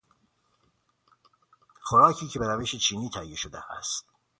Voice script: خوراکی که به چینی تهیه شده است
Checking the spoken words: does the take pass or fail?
fail